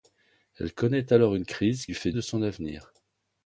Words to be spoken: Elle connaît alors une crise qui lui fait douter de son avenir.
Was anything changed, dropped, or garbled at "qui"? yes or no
yes